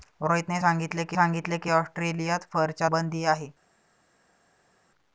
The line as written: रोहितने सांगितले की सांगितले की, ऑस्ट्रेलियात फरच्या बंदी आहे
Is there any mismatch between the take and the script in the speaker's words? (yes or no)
no